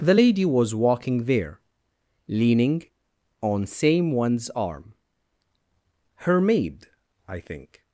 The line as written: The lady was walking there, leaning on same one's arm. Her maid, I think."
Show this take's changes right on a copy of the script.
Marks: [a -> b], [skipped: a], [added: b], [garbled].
The lady was walking there, leaning on same one's arm. Her maid, I think."